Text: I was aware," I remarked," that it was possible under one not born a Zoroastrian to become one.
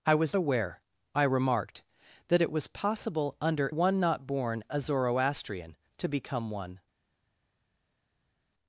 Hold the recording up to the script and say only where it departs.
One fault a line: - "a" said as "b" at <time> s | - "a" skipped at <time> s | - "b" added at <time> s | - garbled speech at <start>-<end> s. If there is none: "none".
none